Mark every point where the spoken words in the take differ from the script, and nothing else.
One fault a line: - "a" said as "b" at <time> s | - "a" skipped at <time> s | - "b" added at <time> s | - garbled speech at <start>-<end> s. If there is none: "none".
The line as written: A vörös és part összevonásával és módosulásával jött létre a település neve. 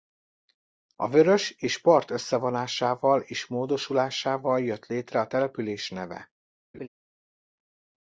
none